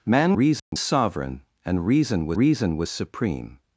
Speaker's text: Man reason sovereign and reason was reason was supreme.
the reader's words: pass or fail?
pass